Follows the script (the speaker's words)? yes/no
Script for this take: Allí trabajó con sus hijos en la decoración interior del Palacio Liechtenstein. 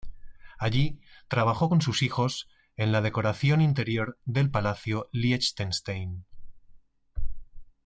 yes